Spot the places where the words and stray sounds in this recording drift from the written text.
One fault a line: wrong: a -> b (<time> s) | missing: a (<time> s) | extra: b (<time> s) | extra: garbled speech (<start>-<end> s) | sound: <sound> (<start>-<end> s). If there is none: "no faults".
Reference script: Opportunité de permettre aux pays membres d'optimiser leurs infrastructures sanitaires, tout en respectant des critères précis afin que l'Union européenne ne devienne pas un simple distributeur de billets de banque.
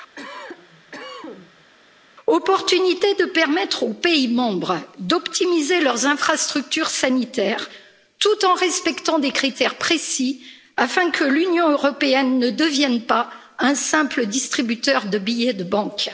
sound: cough (0.2-1.7 s)